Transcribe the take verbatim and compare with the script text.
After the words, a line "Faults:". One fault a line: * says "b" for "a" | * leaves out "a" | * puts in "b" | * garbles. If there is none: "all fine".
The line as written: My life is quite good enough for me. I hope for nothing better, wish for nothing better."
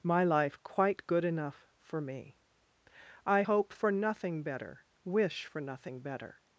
My life quite good enough for me. I hope for nothing better, wish for nothing better."
Faults:
* leaves out "is"